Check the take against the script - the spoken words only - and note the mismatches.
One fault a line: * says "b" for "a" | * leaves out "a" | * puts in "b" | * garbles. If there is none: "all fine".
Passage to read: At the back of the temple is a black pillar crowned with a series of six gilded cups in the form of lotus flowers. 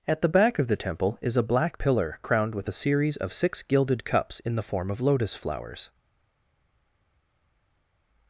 all fine